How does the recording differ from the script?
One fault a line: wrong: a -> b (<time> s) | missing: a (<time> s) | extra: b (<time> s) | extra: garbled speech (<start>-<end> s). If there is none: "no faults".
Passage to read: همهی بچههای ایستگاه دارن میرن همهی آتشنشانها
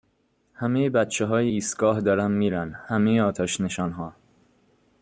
no faults